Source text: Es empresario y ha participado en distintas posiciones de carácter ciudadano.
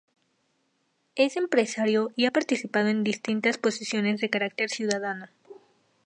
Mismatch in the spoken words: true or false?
false